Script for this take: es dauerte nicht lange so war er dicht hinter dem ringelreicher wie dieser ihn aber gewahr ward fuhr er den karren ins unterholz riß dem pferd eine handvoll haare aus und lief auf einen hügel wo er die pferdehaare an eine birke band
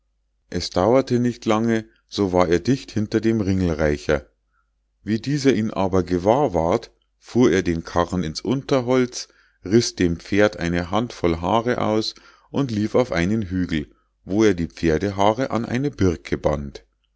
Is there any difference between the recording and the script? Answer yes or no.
no